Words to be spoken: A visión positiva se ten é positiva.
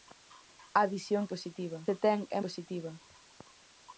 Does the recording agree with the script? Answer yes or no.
yes